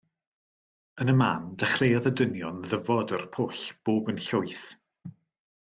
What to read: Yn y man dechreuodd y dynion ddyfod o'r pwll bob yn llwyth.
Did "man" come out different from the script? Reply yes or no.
no